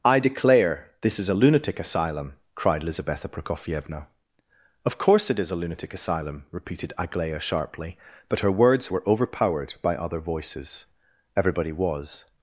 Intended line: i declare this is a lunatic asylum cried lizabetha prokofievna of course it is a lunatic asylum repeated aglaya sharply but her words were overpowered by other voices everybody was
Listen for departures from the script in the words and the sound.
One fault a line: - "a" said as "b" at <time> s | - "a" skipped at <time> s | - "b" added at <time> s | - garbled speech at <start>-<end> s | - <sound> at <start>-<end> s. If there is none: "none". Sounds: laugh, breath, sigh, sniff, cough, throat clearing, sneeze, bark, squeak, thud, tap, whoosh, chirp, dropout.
none